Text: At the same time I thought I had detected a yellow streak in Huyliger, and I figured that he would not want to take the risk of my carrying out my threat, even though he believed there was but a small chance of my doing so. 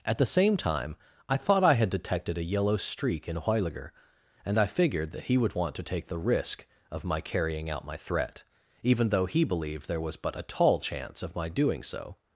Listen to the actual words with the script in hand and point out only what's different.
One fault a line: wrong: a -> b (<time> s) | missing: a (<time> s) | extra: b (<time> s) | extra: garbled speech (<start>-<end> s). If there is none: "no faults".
missing: not (5.5 s)
wrong: small -> tall (10.4 s)